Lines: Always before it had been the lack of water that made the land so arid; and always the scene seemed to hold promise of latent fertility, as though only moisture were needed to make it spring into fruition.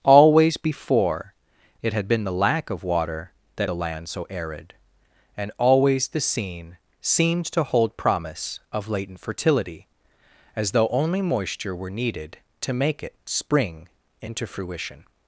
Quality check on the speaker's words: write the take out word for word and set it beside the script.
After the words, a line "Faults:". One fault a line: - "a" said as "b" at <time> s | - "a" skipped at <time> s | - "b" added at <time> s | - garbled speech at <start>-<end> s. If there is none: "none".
Always before it had been the lack of water that the land so arid; and always the scene seemed to hold promise of latent fertility, as though only moisture were needed to make it spring into fruition.
Faults:
- "made" skipped at 3.7 s